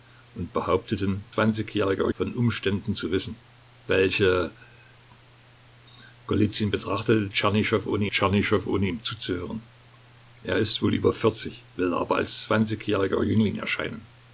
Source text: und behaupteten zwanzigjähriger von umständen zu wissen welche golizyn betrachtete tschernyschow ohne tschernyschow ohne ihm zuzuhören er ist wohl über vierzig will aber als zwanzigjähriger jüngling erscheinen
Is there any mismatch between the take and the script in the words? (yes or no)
no